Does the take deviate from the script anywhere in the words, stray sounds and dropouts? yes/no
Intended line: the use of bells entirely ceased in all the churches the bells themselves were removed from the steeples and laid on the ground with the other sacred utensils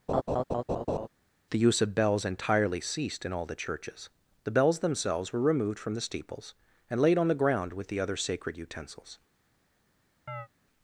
yes